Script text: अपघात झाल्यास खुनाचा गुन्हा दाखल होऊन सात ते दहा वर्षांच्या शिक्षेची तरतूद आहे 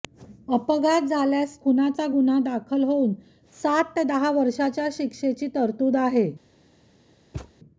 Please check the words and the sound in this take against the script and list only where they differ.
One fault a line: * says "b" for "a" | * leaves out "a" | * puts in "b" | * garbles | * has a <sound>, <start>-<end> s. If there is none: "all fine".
* has a thud, 7.3-7.5 s